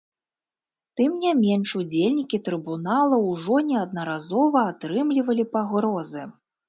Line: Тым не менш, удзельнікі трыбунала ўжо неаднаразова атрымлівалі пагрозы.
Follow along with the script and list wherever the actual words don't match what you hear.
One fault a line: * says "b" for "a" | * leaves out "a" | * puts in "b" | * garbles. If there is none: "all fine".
all fine